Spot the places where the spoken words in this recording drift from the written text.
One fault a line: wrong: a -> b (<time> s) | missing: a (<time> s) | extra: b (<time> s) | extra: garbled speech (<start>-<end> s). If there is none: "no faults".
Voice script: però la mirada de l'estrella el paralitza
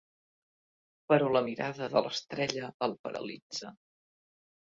no faults